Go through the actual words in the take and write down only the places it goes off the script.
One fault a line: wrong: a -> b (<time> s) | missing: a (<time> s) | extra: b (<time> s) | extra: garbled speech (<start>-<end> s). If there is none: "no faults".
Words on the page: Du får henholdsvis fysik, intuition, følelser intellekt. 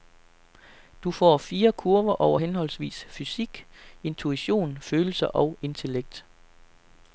extra: fire kurver over (1.4 s)
extra: og (5.3 s)